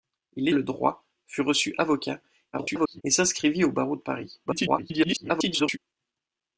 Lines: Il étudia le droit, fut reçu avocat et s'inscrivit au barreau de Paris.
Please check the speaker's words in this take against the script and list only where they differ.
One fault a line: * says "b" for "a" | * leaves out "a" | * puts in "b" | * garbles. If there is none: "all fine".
* leaves out "étudia"
* garbles
* garbles